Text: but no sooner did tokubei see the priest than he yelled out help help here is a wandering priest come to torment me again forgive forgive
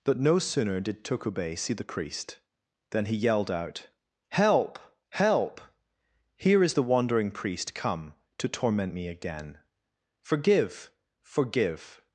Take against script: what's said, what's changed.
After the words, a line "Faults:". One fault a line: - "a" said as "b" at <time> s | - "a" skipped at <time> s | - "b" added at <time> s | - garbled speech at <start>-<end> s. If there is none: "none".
but no sooner did tokubei see the priest than he yelled out help help here is the wandering priest come to torment me again forgive forgive
Faults:
- "a" said as "the" at 6.7 s